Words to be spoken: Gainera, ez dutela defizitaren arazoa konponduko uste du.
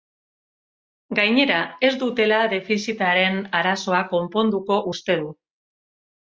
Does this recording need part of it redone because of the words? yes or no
no